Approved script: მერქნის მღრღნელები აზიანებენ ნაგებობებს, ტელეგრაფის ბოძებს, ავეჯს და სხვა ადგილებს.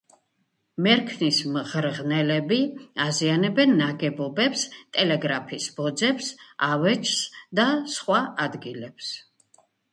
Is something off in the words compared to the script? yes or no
no